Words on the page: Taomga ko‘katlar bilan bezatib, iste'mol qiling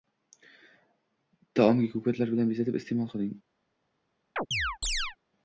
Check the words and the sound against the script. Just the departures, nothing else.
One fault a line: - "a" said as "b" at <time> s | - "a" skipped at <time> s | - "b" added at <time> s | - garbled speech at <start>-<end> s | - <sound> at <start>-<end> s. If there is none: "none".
- chirp at 4.4-5.2 s